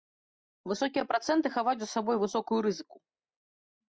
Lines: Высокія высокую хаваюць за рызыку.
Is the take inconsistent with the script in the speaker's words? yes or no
yes